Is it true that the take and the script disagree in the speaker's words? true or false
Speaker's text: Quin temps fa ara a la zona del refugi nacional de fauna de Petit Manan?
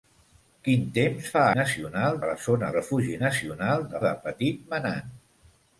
true